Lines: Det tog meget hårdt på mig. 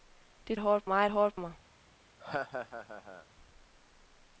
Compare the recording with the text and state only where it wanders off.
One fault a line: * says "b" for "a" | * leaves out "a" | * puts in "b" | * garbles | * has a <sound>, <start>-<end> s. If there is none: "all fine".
* says "hårdt" for "tog"
* leaves out "på"
* has a laugh, 2.2-3.3 s